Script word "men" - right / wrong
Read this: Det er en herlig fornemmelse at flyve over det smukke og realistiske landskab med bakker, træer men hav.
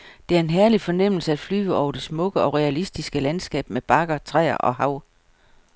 wrong